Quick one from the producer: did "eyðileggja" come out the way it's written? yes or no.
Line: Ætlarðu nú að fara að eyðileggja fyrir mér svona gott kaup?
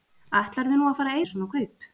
no